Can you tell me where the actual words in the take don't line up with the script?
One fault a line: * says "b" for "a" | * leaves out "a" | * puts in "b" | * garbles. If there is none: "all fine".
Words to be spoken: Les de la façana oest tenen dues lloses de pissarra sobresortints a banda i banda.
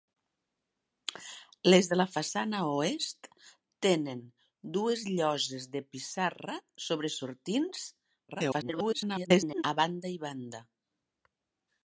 * garbles